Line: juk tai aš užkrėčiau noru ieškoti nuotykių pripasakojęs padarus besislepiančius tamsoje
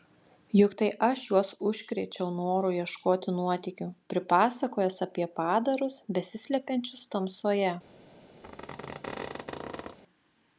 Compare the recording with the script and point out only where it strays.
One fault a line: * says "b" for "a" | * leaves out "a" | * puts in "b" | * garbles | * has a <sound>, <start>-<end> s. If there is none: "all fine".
* puts in "juos"
* puts in "apie"
* has a squeak, 8.4-10.0 s